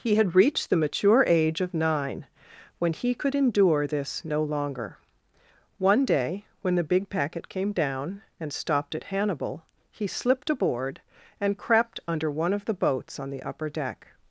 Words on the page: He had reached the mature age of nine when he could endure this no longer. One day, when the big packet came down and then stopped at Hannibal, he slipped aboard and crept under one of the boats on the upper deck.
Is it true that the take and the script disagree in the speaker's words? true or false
true